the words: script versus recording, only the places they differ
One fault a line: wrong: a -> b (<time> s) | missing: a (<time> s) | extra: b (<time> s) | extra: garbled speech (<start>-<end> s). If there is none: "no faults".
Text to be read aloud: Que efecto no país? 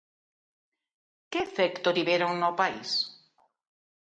extra: tiveron (2.0 s)